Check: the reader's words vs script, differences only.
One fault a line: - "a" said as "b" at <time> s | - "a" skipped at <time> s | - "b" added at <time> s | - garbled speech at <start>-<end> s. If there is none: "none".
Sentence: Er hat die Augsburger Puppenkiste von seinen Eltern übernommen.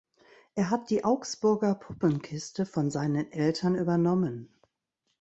none